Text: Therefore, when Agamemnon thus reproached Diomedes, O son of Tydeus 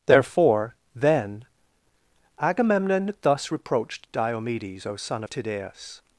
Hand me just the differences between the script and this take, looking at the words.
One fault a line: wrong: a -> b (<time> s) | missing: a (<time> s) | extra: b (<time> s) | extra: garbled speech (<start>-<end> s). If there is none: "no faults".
wrong: when -> then (0.9 s)